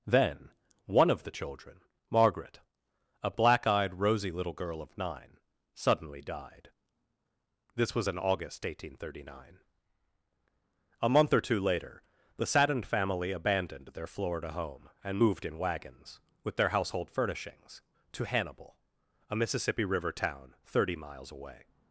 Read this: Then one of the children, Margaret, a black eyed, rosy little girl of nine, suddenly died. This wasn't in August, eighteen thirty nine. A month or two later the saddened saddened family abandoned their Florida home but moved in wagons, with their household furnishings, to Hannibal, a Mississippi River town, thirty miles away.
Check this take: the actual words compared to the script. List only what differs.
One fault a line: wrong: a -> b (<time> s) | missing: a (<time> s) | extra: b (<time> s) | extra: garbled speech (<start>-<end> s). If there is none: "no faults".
wrong: wasn't -> was (7.9 s)
missing: saddened (12.9 s)
wrong: but -> and (15.0 s)